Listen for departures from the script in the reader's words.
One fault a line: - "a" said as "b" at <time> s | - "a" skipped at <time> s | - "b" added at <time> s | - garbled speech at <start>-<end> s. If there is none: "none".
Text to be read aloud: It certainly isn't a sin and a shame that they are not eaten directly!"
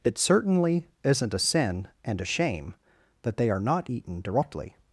none